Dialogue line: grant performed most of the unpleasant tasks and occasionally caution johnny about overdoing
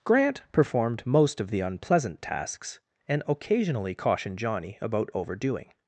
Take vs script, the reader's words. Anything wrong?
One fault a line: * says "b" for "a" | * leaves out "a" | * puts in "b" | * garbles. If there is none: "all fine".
* says "cautioned" for "caution"